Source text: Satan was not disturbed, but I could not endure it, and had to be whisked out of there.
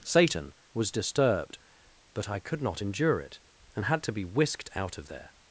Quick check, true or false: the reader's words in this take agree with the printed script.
false